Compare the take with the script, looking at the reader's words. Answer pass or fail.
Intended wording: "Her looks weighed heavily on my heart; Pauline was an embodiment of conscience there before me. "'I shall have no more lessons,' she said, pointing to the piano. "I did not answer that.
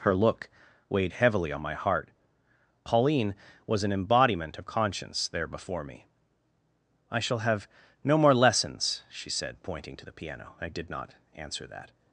fail